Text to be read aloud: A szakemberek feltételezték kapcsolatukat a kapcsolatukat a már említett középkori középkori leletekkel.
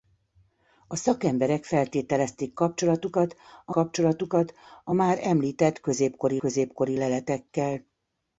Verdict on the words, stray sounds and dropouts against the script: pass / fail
pass